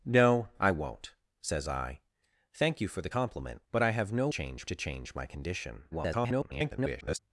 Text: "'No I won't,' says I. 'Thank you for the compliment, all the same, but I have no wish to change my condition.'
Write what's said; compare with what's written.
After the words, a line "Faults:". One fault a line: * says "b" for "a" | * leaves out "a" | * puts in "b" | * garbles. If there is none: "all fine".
"'No I won't,' says I. 'Thank you for the compliment, but I have no change to change my condition.' [garbled]
Faults:
* leaves out "all the same"
* says "change" for "wish"
* garbles